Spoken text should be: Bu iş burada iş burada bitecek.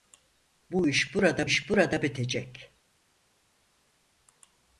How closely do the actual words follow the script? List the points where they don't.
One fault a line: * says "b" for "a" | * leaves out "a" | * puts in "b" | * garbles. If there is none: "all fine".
all fine